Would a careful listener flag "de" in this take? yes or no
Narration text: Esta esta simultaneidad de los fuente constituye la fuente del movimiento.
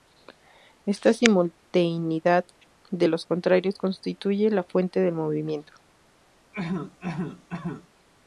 no